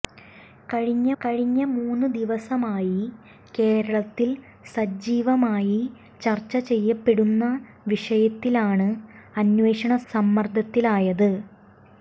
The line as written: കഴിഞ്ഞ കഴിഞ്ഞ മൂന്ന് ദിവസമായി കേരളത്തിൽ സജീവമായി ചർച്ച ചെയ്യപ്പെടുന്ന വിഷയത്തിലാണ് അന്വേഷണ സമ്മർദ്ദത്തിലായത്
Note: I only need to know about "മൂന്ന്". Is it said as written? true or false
true